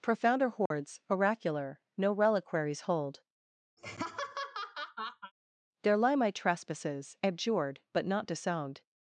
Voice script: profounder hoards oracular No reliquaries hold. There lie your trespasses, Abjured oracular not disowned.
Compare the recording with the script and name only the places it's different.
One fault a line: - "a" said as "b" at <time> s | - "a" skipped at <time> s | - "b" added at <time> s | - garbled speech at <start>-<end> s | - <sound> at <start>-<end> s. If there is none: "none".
- dropout at 0.7-0.7 s
- laugh at 3.8-5.3 s
- "your" said as "my" at 6.2 s
- "oracular" said as "but" at 7.9 s